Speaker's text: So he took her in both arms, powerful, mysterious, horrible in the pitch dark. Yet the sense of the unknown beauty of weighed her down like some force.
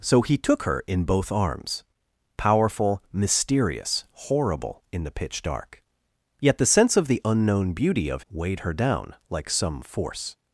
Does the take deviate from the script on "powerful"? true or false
false